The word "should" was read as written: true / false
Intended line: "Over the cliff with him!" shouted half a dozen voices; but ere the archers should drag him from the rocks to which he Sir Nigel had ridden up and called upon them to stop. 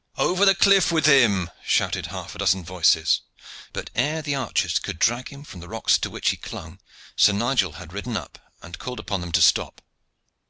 false